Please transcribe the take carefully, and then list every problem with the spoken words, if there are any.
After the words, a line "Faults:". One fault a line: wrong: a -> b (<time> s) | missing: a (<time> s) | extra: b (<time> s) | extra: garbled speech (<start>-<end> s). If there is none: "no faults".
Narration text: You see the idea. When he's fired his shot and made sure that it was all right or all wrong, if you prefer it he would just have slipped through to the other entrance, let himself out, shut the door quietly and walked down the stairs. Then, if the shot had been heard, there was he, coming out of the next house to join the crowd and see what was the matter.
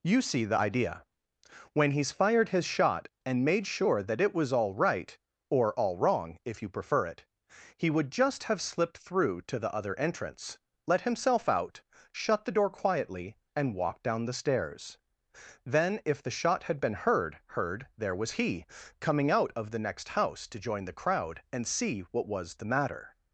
You see the idea. When he's fired his shot and made sure that it was all right or all wrong, if you prefer it he would just have slipped through to the other entrance, let himself out, shut the door quietly and walked down the stairs. Then, if the shot had been heard heard, there was he, coming out of the next house to join the crowd and see what was the matter.
Faults:
extra: heard (17.5 s)